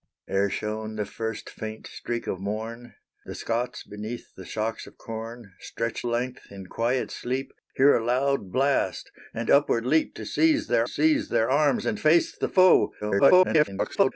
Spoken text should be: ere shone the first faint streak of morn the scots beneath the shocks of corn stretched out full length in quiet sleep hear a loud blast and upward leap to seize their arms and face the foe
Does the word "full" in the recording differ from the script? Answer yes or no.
yes